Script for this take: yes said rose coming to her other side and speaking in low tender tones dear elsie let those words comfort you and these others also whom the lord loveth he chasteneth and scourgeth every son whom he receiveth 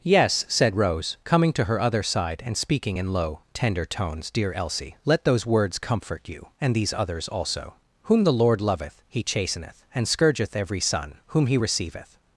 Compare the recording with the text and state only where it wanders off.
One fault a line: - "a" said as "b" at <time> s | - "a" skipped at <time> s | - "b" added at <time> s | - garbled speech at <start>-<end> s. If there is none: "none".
none